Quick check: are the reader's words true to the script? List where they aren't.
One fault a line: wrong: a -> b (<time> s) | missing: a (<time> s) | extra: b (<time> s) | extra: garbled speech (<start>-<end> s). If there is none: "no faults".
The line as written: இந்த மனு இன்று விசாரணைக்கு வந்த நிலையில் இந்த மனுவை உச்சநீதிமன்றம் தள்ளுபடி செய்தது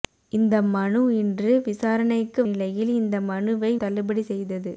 missing: வந்த (2.4 s)
missing: உச்சநீதிமன்றம் (3.7 s)